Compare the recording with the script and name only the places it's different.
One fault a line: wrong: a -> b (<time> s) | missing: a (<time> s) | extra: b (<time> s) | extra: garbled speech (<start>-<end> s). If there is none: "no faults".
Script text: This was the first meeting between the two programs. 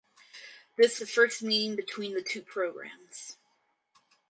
missing: was (1.0 s)